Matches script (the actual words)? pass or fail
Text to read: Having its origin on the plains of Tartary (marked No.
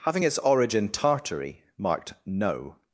fail